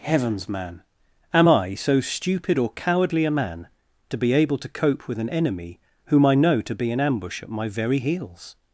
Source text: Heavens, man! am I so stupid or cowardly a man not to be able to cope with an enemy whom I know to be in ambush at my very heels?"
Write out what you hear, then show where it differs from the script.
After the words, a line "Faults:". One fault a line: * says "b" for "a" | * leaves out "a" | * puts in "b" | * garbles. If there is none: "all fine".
Heavens, man! am I so stupid or cowardly a man to be able to cope with an enemy whom I know to be in ambush at my very heels?"
Faults:
* leaves out "not"